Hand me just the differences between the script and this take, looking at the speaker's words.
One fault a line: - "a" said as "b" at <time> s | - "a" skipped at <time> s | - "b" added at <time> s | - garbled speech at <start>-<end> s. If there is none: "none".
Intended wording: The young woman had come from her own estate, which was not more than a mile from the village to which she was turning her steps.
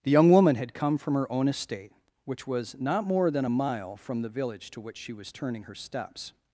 none